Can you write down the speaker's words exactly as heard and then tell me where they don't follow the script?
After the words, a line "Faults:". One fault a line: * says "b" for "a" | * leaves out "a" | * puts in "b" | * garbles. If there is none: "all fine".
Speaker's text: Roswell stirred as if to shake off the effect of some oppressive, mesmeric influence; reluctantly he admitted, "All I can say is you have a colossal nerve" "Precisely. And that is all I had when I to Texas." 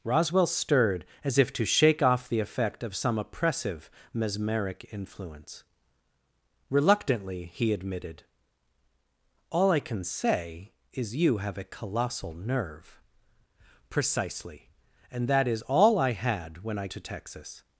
Roswell stirred as if to shake off the effect of some oppressive, mesmeric influence; reluctantly he admitted, "All I can say is you have a colossal nerve" "Precisely. And that is all I had when I to Texas."
Faults:
all fine